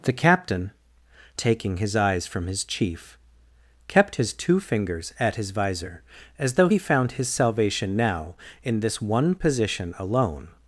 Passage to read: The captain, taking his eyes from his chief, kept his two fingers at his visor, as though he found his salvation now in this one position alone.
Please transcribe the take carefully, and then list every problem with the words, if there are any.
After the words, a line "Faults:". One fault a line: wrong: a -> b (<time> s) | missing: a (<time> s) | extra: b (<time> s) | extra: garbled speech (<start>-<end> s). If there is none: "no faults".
The captain, taking his eyes from his chief, kept his two fingers at his visor, as though he found his salvation now in this one position alone.
Faults:
no faults